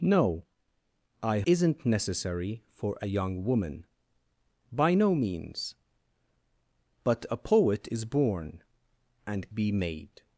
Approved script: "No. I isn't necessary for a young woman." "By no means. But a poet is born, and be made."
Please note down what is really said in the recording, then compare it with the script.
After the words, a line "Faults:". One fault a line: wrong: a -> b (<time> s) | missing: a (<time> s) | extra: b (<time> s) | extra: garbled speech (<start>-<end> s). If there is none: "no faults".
"No. I isn't necessary for a young woman." "By no means. But a poet is born, and be made."
Faults:
no faults